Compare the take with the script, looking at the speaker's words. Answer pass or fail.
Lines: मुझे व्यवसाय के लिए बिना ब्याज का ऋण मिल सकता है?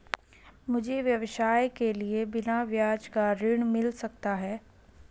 pass